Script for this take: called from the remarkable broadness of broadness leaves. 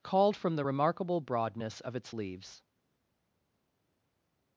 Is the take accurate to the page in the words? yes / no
no